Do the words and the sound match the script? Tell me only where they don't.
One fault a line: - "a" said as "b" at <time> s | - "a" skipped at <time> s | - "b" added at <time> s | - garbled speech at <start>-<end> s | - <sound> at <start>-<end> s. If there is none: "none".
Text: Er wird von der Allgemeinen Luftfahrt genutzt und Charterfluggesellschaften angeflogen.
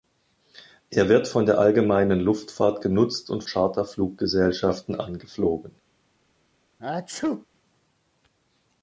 - sneeze at 6.8-7.5 s